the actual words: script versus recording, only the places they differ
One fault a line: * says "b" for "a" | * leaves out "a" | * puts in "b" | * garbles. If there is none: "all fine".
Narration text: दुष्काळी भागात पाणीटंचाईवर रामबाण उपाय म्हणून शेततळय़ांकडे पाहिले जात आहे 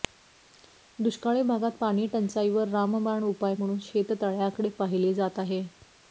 all fine